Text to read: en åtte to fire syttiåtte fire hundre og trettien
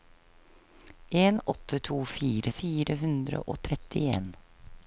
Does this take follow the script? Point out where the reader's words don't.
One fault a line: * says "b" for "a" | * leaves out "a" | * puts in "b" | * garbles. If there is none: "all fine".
* leaves out "syttiåtte"